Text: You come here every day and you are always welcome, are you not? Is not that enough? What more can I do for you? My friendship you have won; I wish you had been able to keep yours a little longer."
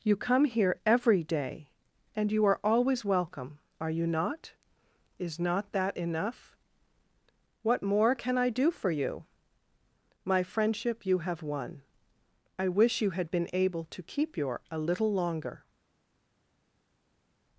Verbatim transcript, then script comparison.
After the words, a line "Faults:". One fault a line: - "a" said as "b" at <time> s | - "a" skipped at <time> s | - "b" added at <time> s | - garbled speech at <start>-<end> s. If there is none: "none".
You come here every day and you are always welcome, are you not? Is not that enough? What more can I do for you? My friendship you have won; I wish you had been able to keep your a little longer."
Faults:
- "yours" said as "your" at 14.4 s